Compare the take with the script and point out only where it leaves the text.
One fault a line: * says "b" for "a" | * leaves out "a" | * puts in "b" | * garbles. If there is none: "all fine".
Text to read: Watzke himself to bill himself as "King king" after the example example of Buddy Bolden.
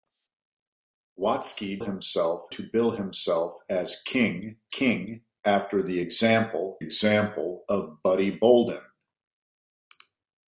all fine